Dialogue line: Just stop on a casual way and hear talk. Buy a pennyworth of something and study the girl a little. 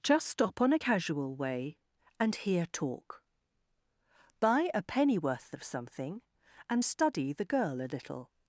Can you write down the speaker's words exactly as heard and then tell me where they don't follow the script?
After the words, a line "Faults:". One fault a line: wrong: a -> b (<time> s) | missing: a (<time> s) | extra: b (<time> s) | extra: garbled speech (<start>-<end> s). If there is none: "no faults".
Just stop on a casual way and hear talk. Buy a pennyworth of something and study the girl a little.
Faults:
no faults